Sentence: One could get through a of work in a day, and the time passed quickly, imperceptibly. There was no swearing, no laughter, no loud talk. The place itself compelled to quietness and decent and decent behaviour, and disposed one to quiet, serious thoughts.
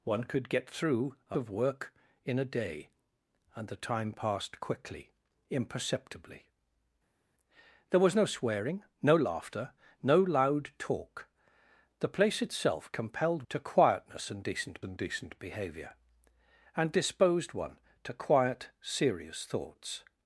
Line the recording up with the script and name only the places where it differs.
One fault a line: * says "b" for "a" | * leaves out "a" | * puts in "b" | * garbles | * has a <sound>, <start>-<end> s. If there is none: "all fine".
all fine